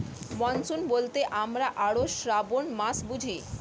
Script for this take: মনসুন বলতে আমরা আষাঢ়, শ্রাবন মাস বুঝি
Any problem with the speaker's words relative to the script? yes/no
no